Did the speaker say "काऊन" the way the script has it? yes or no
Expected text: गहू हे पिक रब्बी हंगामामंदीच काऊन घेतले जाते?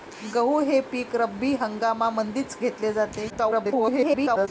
no